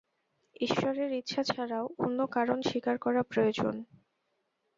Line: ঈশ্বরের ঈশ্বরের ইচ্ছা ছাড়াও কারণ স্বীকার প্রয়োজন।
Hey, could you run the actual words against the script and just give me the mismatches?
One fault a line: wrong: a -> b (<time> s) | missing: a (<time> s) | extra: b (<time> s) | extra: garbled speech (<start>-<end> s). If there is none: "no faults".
missing: ঈশ্বরের (1.1 s)
extra: অন্য (2.0 s)
extra: করা (3.0 s)